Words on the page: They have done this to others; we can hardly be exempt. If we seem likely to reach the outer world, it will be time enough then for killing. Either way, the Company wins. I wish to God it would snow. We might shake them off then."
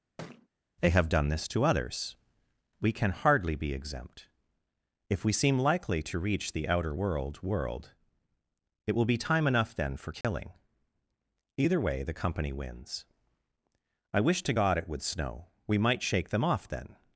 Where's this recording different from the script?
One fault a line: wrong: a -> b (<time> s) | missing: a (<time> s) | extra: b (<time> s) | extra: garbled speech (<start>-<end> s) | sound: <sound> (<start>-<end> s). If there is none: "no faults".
sound: thud (0.2-0.5 s)
extra: world (7.4 s)
sound: dropout (10.2-10.2 s)